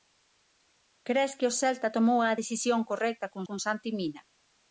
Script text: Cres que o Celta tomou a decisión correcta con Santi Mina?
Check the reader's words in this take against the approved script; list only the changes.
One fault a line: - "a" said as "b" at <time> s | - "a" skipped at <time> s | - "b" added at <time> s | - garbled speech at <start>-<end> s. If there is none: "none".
- "con" added at 3.5 s